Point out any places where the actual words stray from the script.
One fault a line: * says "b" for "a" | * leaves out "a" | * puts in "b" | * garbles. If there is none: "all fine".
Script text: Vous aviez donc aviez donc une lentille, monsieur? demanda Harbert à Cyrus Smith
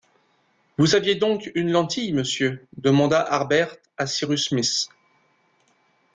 * leaves out "aviez donc"